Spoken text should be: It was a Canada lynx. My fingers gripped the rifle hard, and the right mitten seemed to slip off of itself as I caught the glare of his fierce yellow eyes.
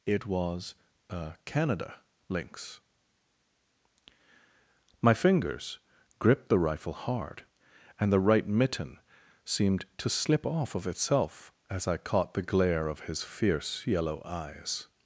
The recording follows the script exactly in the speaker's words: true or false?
true